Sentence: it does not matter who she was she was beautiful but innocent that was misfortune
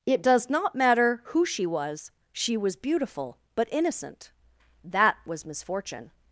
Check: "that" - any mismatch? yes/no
no